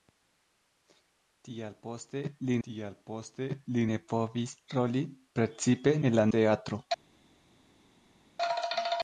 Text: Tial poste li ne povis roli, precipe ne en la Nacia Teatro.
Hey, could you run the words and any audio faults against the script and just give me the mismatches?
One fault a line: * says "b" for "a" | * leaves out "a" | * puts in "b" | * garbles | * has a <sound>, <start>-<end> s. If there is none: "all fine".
* puts in "tial poste li"
* leaves out "ne"
* leaves out "Nacia"